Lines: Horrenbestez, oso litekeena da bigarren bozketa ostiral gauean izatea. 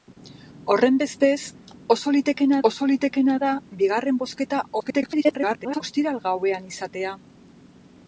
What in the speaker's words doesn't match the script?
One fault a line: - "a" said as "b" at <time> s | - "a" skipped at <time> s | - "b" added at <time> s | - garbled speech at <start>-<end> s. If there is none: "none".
- "oso litekeena" added at 2.7 s
- garbled speech at 4.8-5.8 s